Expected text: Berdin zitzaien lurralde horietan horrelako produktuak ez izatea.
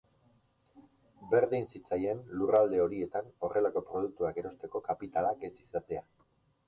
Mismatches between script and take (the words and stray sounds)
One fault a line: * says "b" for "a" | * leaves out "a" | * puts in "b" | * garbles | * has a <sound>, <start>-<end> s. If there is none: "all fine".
* puts in "erosteko kapitalak"